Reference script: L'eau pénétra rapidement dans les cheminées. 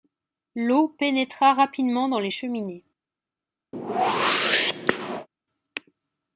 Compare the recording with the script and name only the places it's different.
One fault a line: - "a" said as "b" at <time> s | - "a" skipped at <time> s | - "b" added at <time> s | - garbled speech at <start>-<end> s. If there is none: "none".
none